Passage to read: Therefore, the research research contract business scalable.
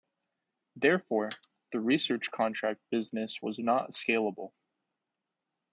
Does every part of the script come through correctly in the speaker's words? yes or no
no